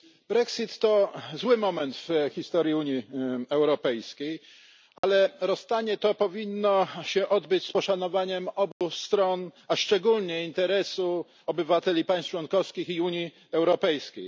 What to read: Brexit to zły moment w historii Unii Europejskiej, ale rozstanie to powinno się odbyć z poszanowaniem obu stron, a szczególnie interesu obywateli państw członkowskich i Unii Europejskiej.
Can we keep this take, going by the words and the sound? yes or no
no